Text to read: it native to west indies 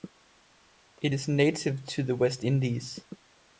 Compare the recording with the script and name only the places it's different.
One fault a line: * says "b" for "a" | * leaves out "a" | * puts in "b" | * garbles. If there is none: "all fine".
* puts in "is"
* puts in "the"